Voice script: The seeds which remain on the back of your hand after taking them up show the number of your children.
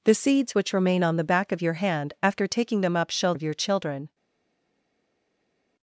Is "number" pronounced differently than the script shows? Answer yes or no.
yes